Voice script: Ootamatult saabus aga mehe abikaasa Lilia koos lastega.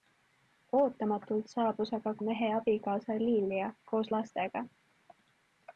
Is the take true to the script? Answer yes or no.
yes